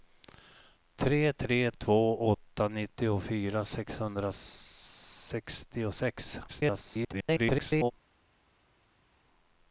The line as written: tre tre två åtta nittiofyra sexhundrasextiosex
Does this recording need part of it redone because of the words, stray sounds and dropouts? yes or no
yes